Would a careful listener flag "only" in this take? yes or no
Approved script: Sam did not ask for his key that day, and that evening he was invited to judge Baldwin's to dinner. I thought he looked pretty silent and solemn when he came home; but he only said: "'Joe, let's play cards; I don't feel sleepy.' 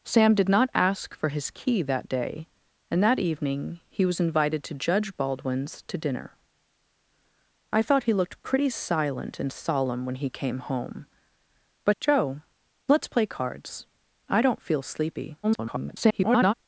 yes